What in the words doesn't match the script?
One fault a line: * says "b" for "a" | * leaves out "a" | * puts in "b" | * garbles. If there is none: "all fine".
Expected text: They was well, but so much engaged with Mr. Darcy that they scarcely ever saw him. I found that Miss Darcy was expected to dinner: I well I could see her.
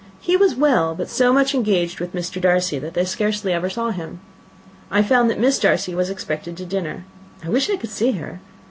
* says "He" for "They"
* says "wish" for "well"